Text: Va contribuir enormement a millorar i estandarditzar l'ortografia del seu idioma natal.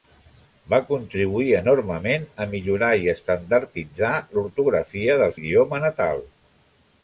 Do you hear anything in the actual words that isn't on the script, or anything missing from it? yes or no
yes